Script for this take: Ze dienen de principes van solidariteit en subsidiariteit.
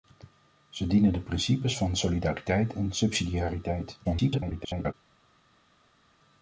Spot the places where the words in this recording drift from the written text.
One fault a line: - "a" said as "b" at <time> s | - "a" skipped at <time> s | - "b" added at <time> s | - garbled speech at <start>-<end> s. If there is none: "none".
- garbled speech at 4.0-4.9 s